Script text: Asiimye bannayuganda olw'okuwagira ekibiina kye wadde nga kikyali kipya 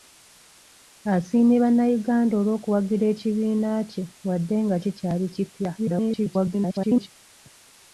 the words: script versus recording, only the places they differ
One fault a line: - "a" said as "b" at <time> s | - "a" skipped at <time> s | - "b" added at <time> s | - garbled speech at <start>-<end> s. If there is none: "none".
- garbled speech at 5.8-7.1 s